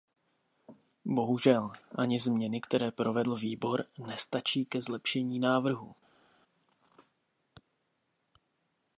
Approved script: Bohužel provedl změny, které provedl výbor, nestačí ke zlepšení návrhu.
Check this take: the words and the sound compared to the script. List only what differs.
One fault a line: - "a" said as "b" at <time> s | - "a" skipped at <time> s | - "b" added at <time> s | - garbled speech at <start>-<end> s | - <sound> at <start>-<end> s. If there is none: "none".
- "provedl" said as "ani" at 1.9 s